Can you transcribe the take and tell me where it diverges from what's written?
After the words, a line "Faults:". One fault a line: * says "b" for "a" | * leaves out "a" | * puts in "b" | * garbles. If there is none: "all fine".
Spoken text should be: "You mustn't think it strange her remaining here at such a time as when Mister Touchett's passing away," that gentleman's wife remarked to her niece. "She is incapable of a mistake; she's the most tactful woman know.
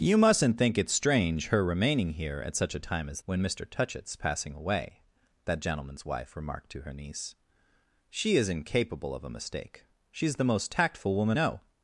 "You mustn't think it strange her remaining here at such a time as when Mister Touchett's passing away," that gentleman's wife remarked to her niece. "She is incapable of a mistake; she's the most tactful woman know.
Faults:
all fine